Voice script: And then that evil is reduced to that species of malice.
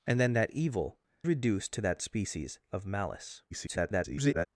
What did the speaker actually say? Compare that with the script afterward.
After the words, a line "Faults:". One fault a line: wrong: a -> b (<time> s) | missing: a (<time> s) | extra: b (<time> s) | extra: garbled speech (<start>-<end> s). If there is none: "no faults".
And then that evil reduced to that species of malice. [garbled]
Faults:
missing: is (1.0 s)
extra: garbled speech (3.5-4.5 s)